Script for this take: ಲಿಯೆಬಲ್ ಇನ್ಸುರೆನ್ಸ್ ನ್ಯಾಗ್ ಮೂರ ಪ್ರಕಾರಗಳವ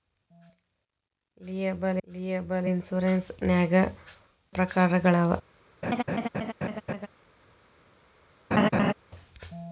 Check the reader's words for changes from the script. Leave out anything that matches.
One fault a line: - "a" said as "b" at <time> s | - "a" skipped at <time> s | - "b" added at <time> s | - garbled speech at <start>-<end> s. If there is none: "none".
- "ಲಿಯೆಬಲ್" added at 2.1 s
- "ಮೂರ" skipped at 3.8 s